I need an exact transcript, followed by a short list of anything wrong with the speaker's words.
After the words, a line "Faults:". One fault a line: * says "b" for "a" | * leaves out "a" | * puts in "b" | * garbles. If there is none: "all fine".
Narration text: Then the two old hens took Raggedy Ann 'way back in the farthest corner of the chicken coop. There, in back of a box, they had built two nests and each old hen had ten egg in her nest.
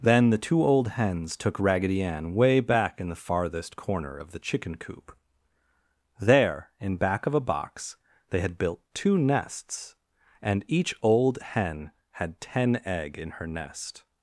Then the two old hens took Raggedy Ann 'way back in the farthest corner of the chicken coop. There, in back of a box, they had built two nests and each old hen had ten egg in her nest.
Faults:
all fine